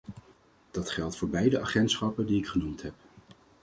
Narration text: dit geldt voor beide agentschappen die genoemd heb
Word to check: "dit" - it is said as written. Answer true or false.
false